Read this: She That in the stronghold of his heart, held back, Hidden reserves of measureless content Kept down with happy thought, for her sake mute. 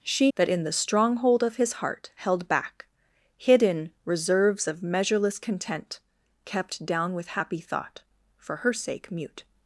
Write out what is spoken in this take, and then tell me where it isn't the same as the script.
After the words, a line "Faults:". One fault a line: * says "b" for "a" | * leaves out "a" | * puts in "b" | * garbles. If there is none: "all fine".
She That in the stronghold of his heart, held back, Hidden reserves of measureless content Kept down with happy thought, for her sake mute.
Faults:
all fine